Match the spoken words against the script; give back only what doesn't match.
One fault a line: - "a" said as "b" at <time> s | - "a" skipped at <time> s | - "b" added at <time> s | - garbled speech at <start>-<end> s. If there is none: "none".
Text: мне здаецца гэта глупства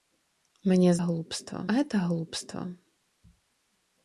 - "здаецца" said as "глупства" at 1.1 s